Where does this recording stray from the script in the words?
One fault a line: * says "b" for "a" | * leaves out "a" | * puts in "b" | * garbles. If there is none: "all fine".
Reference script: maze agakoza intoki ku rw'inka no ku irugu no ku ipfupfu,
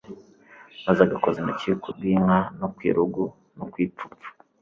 all fine